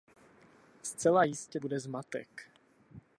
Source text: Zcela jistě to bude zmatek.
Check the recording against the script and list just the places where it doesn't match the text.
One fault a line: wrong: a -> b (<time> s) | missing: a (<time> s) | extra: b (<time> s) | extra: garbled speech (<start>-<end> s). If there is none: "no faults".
missing: to (1.6 s)